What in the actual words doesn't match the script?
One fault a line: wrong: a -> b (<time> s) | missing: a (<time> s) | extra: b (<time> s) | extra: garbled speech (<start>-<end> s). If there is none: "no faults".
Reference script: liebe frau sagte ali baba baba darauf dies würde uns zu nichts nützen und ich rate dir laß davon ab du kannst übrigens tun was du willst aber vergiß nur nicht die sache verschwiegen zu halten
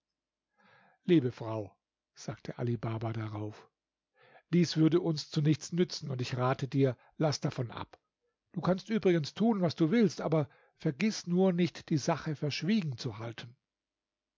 missing: baba (3.1 s)